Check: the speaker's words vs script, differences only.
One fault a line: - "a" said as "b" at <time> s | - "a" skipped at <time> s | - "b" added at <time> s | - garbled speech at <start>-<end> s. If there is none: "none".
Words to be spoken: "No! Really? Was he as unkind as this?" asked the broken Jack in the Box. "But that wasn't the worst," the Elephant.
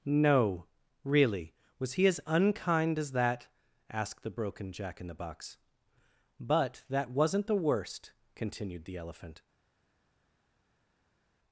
- "this" said as "that" at 3.1 s
- "continued" added at 8.3 s